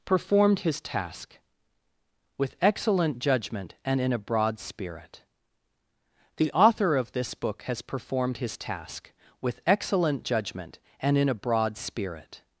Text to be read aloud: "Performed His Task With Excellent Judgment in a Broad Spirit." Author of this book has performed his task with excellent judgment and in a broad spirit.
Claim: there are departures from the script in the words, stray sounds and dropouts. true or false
true